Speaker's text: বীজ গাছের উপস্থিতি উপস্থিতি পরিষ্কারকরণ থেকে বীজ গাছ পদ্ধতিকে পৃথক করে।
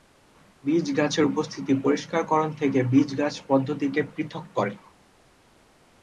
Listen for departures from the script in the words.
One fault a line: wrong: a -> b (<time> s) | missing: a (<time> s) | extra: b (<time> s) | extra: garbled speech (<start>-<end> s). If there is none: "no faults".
missing: উপস্থিতি (1.7 s)